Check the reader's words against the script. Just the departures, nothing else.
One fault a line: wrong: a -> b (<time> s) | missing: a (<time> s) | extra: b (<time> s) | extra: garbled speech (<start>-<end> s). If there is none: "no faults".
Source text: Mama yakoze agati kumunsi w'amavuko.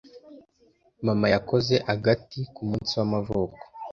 no faults